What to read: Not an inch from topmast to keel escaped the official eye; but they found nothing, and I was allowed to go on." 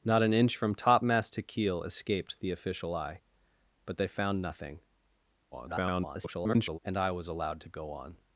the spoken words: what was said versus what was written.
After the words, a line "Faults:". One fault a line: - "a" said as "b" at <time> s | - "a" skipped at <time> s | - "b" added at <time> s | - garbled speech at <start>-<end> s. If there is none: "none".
Not an inch from topmast to keel escaped the official eye; but they found nothing, [garbled] and I was allowed to go on."
Faults:
- garbled speech at 5.5-6.8 s